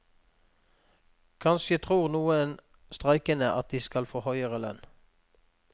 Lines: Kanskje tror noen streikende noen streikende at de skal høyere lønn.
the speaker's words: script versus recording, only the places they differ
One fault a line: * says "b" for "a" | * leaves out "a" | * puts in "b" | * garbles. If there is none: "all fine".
* leaves out "noen streikende"
* puts in "få"